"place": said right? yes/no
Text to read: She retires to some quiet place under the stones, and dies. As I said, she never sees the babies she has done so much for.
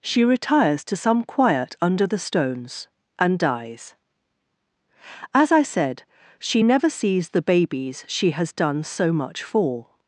no